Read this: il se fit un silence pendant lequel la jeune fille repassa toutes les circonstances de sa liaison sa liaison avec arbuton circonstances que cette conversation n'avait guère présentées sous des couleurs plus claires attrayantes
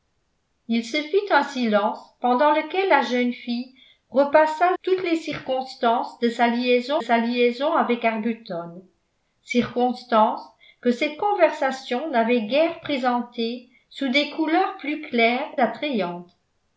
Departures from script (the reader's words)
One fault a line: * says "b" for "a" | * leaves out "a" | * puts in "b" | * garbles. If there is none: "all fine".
all fine